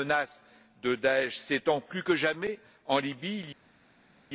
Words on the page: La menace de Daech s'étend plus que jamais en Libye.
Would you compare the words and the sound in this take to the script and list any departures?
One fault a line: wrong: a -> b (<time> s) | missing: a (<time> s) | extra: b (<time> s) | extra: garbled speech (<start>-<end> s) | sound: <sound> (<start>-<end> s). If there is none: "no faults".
no faults